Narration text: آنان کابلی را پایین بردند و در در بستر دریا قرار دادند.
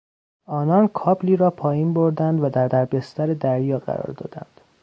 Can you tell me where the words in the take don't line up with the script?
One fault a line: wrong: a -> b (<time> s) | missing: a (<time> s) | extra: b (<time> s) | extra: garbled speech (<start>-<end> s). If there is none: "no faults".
no faults